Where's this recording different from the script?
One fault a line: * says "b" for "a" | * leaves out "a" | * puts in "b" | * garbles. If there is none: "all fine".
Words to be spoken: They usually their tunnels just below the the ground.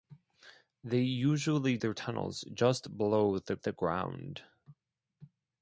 all fine